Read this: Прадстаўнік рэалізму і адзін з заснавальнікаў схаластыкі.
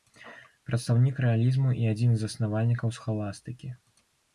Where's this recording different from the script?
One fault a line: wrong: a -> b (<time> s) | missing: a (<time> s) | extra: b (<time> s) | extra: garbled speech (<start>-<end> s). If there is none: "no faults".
no faults